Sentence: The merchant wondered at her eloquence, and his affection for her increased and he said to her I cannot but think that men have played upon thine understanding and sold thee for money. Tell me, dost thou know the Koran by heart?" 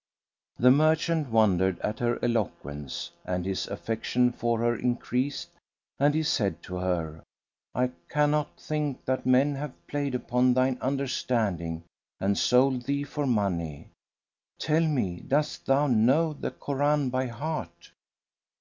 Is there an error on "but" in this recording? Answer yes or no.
yes